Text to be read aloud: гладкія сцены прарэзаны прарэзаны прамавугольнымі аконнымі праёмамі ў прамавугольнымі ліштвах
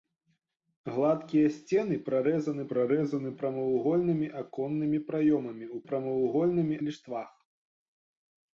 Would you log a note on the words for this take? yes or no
no